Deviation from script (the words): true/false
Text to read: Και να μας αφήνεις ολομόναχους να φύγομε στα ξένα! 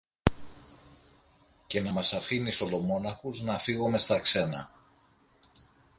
false